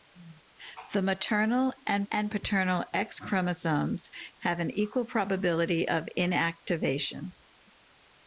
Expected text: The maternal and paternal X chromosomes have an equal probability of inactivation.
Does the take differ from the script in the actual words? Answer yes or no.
yes